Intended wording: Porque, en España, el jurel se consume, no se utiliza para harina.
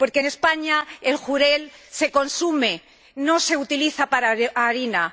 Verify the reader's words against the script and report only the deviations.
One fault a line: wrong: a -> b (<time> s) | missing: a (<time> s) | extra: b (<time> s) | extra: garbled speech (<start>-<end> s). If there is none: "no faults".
no faults